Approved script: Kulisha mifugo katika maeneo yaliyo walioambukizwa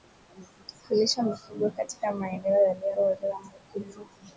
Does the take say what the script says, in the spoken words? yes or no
yes